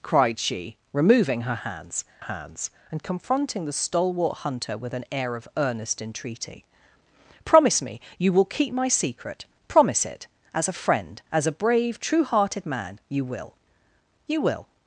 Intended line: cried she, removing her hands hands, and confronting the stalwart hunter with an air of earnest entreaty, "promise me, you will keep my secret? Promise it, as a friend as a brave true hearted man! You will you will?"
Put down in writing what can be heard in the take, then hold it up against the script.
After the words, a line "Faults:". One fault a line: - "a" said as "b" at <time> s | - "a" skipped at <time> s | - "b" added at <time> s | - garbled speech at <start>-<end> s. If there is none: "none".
cried she, removing her hands hands, and confronting the stalwart hunter with an air of earnest entreaty, "promise me, you will keep my secret? Promise it, as a friend as a brave true hearted man! You will you will?"
Faults:
none